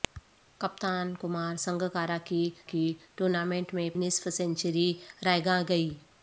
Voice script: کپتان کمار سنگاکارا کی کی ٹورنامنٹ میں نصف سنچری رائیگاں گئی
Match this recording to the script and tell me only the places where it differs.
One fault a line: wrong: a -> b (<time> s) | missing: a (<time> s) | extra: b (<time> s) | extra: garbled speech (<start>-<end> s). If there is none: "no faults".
no faults